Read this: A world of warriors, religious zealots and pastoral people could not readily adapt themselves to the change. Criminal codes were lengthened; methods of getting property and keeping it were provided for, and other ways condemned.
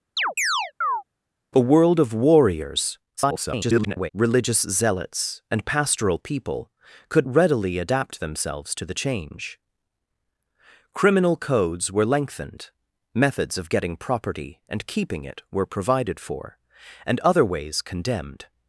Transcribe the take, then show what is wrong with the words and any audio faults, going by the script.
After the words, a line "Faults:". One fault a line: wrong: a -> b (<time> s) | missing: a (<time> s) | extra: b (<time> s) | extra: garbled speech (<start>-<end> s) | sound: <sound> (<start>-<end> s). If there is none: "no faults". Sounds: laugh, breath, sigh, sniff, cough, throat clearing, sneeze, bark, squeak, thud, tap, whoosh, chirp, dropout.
A world of warriors, [garbled] religious zealots and pastoral people could readily adapt themselves to the change. Criminal codes were lengthened; methods of getting property and keeping it were provided for, and other ways condemned.
Faults:
sound: chirp (0.2-1.0 s)
extra: garbled speech (3.2-4.1 s)
missing: not (7.3 s)